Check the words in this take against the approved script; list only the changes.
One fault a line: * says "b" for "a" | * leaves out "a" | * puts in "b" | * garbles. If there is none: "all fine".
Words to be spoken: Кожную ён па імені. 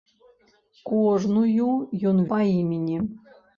all fine